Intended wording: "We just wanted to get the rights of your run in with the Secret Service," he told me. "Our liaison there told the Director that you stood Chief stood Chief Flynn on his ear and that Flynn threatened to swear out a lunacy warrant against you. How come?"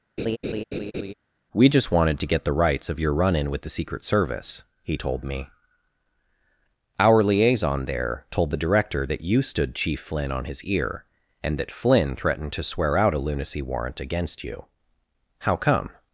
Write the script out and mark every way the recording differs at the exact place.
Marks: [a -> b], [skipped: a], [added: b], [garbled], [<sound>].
[laugh] "We just wanted to get the rights of your run in with the Secret Service," he told me. "Our liaison there told the Director that you stood Chief [skipped: stood Chief] Flynn on his ear and that Flynn threatened to swear out a lunacy warrant against you. How come?"